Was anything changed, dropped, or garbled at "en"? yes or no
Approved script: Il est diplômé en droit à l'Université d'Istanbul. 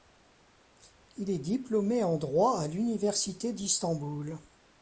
no